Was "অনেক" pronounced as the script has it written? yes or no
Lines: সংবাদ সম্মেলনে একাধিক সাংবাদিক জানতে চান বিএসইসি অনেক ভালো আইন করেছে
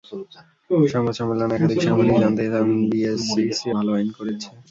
no